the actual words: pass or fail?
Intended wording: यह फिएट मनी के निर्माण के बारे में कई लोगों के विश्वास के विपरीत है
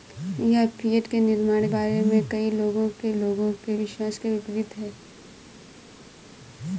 fail